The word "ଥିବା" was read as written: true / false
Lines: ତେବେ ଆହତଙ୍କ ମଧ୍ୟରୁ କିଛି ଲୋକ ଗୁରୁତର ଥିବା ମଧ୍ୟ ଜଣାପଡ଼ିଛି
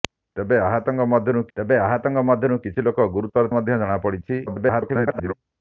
false